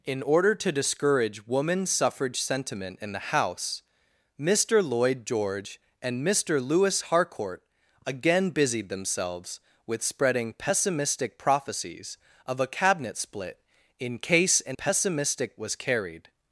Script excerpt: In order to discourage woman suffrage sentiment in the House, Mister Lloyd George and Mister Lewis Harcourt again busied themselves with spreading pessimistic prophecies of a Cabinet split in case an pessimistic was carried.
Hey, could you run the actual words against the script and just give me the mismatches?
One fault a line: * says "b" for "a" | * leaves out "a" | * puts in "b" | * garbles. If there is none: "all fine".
all fine